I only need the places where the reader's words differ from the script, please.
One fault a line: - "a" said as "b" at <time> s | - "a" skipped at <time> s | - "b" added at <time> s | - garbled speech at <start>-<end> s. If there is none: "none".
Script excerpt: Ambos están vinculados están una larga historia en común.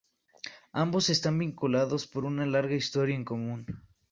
- "están" said as "por" at 2.1 s